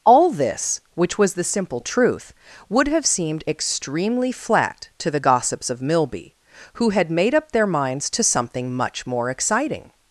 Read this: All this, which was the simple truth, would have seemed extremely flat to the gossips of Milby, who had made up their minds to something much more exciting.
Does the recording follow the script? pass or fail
pass